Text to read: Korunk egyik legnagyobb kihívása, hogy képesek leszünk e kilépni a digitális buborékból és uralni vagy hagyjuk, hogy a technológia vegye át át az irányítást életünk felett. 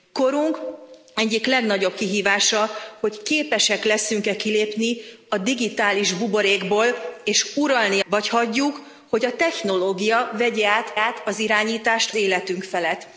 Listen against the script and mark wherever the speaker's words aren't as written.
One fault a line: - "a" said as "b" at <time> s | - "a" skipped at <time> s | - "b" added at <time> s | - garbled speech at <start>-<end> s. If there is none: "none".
none